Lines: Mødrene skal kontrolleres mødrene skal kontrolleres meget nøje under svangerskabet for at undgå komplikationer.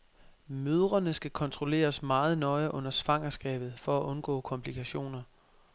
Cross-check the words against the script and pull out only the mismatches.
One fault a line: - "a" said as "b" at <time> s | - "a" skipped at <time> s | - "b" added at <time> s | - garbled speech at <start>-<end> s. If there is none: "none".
- "mødrene skal kontrolleres" skipped at 2.0 s